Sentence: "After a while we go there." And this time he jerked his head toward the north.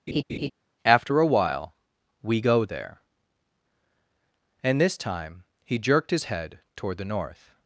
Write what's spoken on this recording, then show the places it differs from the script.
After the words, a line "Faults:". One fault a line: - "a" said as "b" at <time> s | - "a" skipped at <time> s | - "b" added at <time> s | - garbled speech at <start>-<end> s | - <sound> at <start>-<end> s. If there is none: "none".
"After a while we go there." And this time he jerked his head toward the north.
Faults:
- laugh at 0.1-0.5 s